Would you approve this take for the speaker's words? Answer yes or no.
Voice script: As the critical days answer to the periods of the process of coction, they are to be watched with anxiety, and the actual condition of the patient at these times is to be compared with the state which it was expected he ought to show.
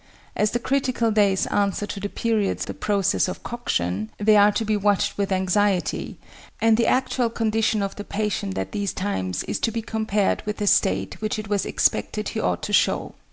no